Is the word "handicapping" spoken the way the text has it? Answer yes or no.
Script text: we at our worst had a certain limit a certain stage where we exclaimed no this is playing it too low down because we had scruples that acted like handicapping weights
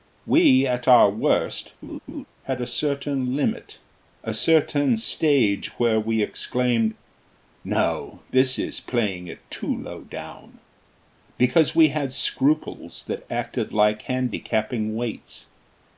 yes